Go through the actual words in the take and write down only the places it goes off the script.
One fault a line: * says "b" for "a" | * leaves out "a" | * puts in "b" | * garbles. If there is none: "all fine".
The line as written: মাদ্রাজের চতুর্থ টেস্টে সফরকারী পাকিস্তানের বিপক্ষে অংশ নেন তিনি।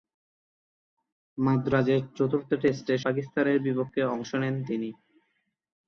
* leaves out "সফরকারী"